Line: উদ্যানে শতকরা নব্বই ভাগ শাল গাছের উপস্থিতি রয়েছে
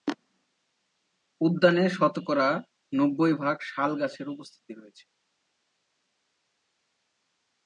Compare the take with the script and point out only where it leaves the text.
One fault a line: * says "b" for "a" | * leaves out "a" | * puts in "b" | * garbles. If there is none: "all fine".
all fine